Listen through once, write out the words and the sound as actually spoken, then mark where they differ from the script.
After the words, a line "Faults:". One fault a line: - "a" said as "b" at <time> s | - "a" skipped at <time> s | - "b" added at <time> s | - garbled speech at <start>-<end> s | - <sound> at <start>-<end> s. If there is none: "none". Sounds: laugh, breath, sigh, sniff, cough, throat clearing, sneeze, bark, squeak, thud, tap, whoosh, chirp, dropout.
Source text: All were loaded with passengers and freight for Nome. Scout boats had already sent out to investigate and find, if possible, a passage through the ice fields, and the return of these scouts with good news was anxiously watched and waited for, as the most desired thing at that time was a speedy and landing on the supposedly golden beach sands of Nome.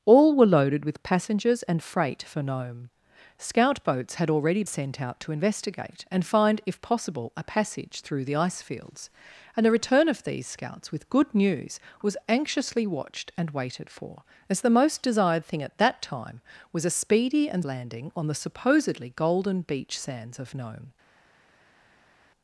All were loaded with passengers and freight for Nome. Scout boats had already sent out to investigate and find, if possible, a passage through the ice fields, and the return of these scouts with good news was anxiously watched and waited for, as the most desired thing at that time was a speedy and landing on the supposedly golden beach sands of Nome.
Faults:
none